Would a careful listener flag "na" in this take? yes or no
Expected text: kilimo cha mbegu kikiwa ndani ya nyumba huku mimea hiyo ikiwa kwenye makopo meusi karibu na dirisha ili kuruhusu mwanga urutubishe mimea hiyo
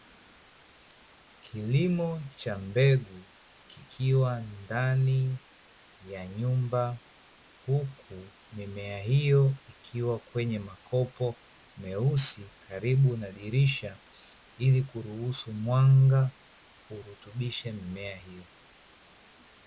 no